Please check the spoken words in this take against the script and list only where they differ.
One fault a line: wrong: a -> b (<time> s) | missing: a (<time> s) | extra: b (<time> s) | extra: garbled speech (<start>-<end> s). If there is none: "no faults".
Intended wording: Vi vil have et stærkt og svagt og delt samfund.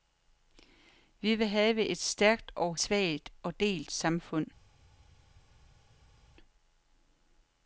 no faults